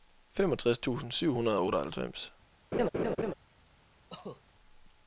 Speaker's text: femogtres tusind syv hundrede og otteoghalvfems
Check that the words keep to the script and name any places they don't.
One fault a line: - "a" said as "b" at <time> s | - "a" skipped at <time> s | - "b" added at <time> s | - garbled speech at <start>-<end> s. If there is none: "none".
none